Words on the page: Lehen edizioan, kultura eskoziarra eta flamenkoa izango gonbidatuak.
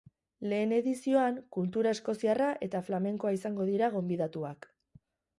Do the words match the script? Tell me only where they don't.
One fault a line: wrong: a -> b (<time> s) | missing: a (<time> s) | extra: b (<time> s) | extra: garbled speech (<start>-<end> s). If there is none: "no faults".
extra: dira (3.7 s)